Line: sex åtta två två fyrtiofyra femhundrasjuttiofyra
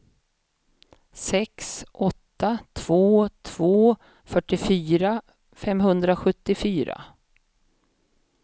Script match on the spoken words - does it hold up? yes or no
yes